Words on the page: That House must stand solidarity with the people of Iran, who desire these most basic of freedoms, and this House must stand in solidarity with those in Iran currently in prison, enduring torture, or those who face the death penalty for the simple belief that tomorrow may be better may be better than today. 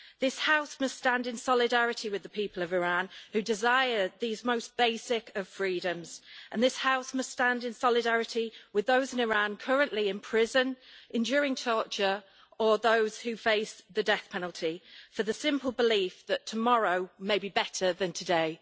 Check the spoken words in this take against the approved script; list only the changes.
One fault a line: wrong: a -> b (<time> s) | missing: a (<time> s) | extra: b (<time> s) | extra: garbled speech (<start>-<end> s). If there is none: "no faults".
wrong: That -> This (0.2 s)
extra: in (1.3 s)
missing: may be better (17.9 s)